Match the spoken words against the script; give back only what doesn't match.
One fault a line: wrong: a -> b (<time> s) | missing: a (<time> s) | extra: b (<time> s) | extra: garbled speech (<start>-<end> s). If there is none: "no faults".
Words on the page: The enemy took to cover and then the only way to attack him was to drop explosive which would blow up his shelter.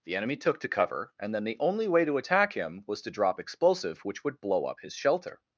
no faults